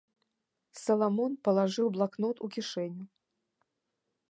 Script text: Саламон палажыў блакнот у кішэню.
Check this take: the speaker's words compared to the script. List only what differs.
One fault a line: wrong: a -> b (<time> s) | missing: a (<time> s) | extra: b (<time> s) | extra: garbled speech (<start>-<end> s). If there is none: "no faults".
no faults